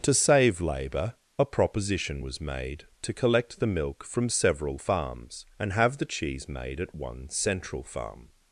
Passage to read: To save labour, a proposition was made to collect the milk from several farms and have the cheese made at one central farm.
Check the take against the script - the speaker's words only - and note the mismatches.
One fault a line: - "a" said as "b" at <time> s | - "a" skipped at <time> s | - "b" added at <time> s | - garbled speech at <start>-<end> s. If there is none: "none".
none